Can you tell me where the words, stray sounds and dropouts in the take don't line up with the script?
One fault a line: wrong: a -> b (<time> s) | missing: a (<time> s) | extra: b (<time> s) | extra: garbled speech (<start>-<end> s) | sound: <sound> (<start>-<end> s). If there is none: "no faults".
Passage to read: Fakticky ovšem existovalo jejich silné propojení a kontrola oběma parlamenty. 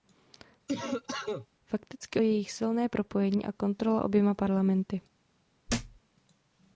sound: cough (0.7-1.5 s)
missing: ovšem existovalo (2.2 s)
sound: thud (5.7-6.0 s)